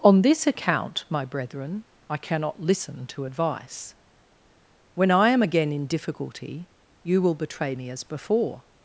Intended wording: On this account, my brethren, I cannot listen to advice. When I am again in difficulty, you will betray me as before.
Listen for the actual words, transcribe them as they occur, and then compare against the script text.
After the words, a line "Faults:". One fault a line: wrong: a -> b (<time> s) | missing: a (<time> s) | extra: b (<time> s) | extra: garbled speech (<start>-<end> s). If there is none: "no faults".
On this account, my brethren, I cannot listen to advice. When I am again in difficulty, you will betray me as before.
Faults:
no faults